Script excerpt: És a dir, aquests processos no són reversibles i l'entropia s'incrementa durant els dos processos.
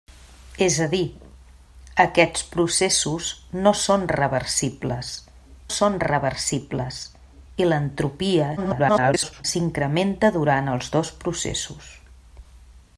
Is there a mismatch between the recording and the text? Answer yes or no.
yes